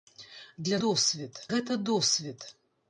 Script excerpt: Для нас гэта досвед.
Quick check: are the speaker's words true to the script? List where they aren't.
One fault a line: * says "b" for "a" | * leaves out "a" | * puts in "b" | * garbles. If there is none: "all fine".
* says "досвед" for "нас"